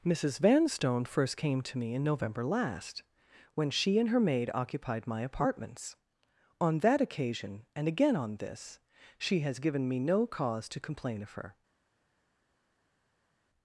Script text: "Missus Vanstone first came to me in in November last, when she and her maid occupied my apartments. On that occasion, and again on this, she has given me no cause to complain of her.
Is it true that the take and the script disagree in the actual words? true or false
true